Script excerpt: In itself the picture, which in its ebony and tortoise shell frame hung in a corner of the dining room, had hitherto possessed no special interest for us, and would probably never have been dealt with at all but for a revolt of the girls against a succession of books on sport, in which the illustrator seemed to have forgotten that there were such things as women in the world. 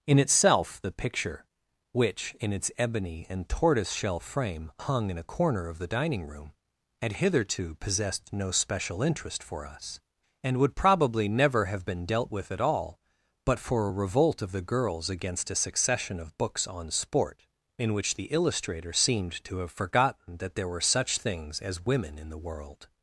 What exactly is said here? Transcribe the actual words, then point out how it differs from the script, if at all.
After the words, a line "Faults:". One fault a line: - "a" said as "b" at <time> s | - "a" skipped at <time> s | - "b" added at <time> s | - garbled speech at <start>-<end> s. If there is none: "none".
In itself the picture, which in its ebony and tortoise shell frame hung in a corner of the dining room, had hitherto possessed no special interest for us, and would probably never have been dealt with at all but for a revolt of the girls against a succession of books on sport, in which the illustrator seemed to have forgotten that there were such things as women in the world.
Faults:
none